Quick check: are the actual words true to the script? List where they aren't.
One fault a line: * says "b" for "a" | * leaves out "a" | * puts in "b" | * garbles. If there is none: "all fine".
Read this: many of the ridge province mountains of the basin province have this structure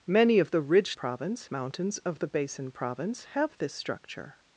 all fine